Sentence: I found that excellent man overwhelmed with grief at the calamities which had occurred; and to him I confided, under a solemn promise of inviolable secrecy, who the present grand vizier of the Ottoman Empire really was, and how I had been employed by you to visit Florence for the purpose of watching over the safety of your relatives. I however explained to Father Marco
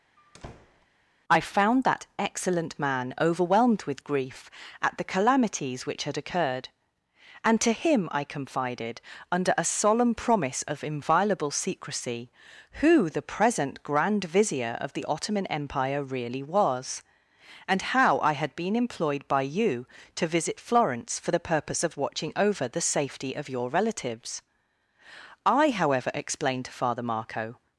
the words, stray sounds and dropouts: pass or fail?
fail